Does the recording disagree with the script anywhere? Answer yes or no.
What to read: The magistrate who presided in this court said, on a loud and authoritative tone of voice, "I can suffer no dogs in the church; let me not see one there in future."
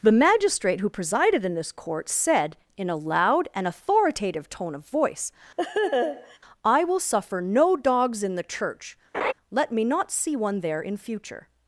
yes